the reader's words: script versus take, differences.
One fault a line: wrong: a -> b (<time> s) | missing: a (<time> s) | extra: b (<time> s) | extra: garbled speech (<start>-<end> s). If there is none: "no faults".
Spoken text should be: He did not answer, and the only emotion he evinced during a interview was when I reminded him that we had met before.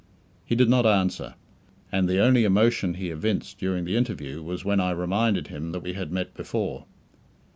wrong: a -> the (3.8 s)